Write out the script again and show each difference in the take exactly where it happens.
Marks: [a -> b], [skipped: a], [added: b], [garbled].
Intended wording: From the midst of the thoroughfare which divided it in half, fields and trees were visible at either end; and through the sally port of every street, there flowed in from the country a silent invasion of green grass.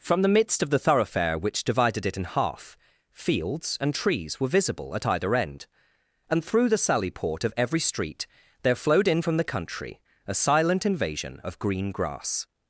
From the midst of the thoroughfare which divided it in half, fields and trees were visible at either end; and through the sally port of every street, there flowed in from the country a silent invasion of green grass.